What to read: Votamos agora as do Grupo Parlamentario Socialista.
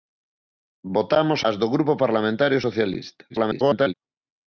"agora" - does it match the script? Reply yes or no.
no